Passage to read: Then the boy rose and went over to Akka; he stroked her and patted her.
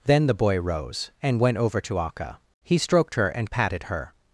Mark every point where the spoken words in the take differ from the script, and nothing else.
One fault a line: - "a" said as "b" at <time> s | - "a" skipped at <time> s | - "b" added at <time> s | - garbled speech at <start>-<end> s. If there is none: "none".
none